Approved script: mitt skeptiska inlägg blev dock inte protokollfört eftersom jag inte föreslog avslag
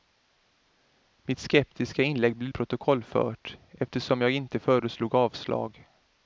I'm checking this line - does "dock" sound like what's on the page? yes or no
no